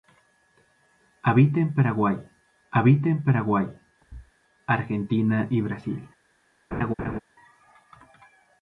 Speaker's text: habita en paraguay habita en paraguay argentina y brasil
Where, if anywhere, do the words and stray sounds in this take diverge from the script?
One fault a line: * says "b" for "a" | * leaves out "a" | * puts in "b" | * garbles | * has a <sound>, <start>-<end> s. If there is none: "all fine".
* has a thud, 4.0-4.3 s
* has a laugh, 6.7-7.2 s